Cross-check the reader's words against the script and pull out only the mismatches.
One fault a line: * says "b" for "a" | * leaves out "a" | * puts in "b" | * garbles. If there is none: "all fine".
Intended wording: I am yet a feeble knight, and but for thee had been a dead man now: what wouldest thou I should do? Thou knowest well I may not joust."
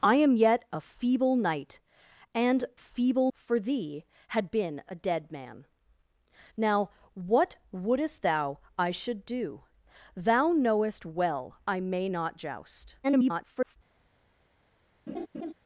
* says "feeble" for "but"
* garbles